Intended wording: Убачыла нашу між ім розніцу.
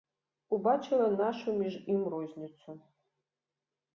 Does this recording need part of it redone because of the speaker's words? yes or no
no